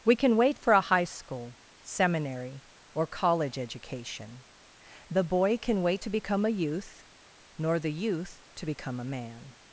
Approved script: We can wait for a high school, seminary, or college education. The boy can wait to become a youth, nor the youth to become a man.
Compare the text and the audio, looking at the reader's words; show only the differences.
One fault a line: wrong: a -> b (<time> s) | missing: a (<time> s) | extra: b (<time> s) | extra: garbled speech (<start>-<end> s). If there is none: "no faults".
no faults